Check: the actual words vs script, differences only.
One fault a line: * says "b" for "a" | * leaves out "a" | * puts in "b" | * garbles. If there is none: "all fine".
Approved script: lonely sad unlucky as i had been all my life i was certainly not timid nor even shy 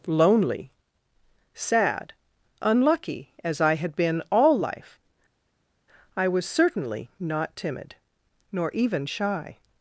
* leaves out "my"